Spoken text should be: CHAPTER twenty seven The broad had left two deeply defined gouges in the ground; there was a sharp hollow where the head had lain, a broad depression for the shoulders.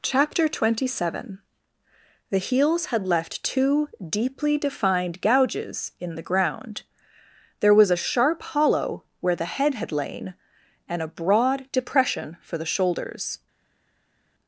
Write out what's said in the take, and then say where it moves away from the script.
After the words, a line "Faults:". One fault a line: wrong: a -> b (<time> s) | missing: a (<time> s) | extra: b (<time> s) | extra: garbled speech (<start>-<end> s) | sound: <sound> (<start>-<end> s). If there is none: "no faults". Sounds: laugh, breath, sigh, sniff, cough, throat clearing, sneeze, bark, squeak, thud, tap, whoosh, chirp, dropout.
CHAPTER twenty seven The heels had left two deeply defined gouges in the ground; there was a sharp hollow where the head had lain, and a broad depression for the shoulders.
Faults:
wrong: broad -> heels (2.4 s)
extra: and (10.9 s)